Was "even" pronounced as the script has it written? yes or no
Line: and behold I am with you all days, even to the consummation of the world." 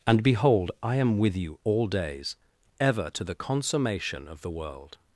no